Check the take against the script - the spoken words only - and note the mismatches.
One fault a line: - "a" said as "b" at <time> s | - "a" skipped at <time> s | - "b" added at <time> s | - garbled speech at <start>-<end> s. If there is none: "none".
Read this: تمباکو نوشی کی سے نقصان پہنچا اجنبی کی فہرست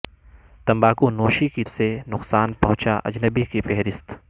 none